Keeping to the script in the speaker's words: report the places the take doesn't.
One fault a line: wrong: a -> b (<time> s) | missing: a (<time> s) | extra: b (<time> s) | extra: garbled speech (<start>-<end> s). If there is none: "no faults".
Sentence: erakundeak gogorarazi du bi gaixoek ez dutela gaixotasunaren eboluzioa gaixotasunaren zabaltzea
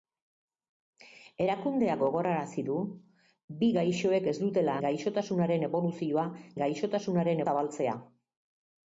no faults